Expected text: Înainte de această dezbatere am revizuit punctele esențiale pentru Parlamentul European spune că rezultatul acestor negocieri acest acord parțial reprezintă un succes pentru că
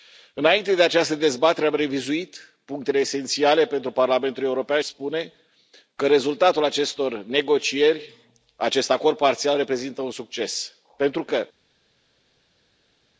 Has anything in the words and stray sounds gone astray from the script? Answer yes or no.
no